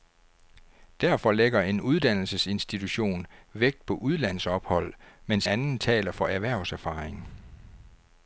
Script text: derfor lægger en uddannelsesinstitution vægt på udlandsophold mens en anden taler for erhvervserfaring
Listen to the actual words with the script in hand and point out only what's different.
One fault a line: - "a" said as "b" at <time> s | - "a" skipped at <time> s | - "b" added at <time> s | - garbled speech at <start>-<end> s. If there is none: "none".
- "en" skipped at 5.5 s